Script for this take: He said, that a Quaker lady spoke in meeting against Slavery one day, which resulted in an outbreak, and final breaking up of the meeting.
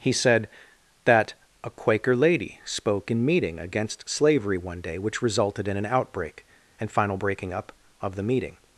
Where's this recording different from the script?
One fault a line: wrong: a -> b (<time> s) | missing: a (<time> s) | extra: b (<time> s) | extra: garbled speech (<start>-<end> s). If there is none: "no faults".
no faults